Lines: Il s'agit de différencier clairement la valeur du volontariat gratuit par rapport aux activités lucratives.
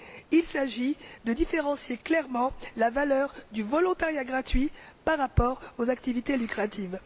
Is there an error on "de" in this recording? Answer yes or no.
no